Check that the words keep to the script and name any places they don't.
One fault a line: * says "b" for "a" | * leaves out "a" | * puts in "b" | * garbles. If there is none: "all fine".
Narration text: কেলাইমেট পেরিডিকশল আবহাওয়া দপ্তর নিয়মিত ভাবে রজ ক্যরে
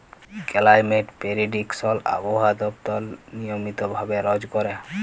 all fine